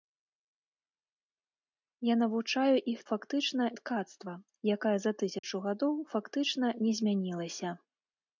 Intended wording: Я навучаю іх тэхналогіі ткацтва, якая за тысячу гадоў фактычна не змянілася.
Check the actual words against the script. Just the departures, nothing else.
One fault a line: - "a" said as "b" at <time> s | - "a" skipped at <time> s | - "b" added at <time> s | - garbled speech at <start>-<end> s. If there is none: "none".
- "тэхналогіі" said as "фактычна" at 3.1 s